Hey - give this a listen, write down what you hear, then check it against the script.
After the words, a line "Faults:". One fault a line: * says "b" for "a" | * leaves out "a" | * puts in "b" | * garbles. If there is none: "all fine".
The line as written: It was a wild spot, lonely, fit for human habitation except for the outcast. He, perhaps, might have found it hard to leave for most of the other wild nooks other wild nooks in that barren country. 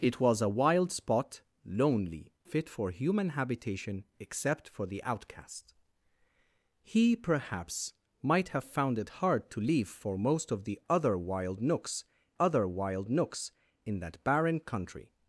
It was a wild spot, lonely, fit for human habitation except for the outcast. He, perhaps, might have found it hard to leave for most of the other wild nooks other wild nooks in that barren country.
Faults:
all fine